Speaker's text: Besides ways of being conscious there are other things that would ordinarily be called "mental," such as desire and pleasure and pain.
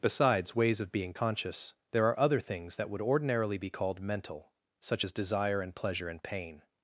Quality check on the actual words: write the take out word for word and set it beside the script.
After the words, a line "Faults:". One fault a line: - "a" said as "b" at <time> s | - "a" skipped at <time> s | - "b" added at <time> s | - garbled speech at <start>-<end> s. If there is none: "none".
Besides ways of being conscious there are other things that would ordinarily be called "mental," such as desire and pleasure and pain.
Faults:
none